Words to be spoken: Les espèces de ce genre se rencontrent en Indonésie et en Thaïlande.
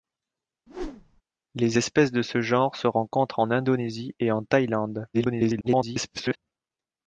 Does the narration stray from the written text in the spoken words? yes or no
yes